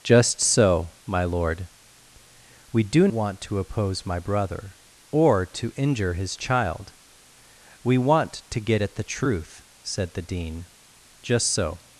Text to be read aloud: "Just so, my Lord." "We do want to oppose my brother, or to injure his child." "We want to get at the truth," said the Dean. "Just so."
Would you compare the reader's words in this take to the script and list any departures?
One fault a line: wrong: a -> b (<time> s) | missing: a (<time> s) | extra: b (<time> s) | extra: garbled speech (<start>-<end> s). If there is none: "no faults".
no faults